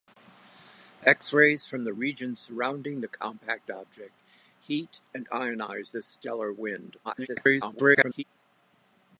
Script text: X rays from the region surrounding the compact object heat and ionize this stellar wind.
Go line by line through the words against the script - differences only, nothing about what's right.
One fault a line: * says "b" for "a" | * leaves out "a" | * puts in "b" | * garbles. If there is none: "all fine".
* garbles